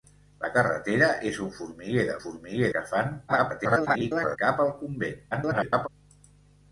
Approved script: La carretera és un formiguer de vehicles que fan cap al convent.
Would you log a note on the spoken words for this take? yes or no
yes